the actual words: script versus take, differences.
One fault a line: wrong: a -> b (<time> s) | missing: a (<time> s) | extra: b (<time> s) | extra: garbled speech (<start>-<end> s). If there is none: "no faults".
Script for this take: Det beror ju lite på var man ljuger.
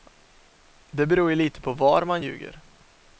no faults